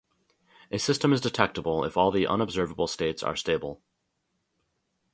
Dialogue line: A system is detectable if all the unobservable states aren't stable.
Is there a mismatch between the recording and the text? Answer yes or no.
yes